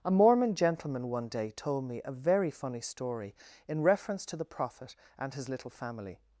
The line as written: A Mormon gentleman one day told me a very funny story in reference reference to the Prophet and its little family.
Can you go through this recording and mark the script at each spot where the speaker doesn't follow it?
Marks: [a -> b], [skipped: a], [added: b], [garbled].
A Mormon gentleman one day told me a very funny story in reference [skipped: reference] to the Prophet and [its -> his] little family.